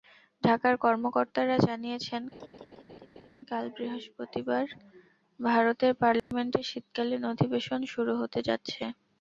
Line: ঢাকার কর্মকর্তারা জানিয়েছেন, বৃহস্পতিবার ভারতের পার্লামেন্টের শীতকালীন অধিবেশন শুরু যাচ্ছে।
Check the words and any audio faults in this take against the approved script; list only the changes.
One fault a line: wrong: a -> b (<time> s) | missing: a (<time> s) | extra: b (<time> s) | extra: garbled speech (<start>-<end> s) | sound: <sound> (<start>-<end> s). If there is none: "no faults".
sound: laugh (2.3-3.3 s)
extra: কাল (3.5 s)
sound: dropout (6.2-6.3 s)
extra: হতে (8.2 s)